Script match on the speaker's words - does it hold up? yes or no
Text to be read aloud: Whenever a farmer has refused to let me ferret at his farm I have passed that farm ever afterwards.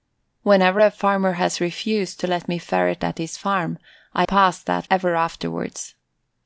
no